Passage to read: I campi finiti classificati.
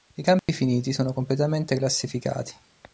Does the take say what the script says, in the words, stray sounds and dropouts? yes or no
no